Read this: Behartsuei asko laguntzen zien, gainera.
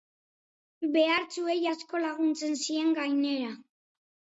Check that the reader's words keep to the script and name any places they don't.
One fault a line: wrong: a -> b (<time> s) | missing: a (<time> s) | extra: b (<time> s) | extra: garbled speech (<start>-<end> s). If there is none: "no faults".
no faults